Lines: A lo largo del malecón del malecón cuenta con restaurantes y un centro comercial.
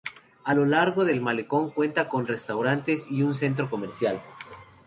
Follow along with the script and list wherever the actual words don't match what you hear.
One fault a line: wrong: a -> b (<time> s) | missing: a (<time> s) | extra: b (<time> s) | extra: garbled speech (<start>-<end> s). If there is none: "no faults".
missing: del malecón (1.7 s)